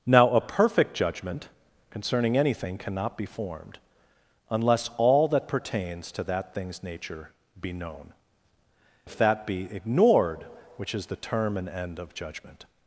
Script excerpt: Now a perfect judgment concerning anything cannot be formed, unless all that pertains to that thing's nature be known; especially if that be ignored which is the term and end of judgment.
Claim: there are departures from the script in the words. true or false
true